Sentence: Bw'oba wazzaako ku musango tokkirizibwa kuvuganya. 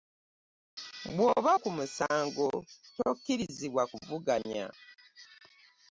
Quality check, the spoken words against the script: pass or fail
fail